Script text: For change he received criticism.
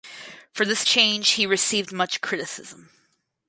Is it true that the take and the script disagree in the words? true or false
true